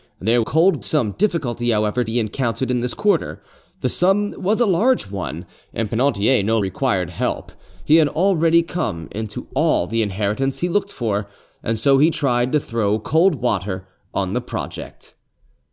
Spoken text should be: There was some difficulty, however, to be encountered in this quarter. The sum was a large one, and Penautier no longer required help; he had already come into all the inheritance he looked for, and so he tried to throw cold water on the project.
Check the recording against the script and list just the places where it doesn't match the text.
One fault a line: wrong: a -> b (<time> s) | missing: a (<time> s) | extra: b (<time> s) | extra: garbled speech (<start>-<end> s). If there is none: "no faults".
wrong: was -> cold (0.4 s)
missing: to (2.0 s)
missing: longer (6.6 s)